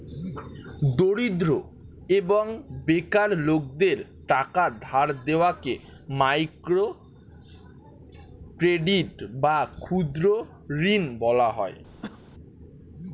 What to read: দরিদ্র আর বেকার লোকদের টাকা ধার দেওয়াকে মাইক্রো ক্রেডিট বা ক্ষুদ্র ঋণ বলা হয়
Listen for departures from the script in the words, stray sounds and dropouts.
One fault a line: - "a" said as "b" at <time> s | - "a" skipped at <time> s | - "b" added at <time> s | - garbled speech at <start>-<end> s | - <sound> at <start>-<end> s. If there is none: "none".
- "আর" said as "এবং" at 2.1 s
- cough at 12.0-12.2 s